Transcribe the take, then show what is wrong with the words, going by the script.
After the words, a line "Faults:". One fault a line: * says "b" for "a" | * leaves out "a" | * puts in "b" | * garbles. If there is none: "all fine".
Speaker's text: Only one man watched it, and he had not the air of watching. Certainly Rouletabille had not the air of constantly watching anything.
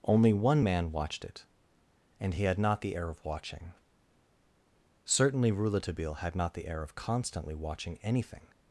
Only one man watched it, and he had not the air of watching. Certainly Rouletabille had not the air of constantly watching anything.
Faults:
all fine